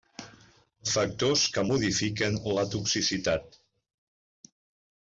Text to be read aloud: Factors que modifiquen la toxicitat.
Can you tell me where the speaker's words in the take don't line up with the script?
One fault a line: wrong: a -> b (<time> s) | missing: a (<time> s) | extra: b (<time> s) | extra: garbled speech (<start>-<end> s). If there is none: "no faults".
no faults